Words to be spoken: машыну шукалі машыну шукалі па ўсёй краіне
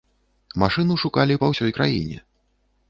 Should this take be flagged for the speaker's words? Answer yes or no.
yes